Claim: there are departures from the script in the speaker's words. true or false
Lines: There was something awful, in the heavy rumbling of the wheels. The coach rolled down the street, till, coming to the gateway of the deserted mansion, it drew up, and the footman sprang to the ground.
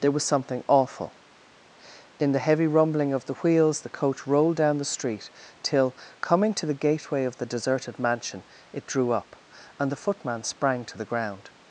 false